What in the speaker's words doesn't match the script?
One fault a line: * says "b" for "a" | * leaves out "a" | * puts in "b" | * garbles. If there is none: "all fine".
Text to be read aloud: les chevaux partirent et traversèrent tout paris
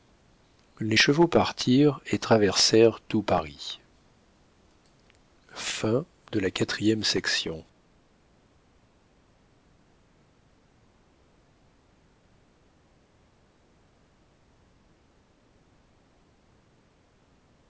all fine